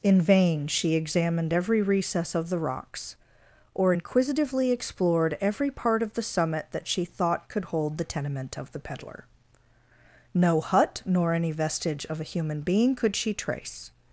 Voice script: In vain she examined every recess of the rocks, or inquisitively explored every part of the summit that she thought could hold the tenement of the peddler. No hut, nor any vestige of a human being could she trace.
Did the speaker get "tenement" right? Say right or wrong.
right